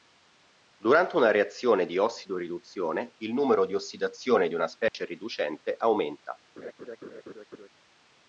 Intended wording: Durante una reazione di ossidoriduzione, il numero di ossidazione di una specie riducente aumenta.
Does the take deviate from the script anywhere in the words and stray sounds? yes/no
yes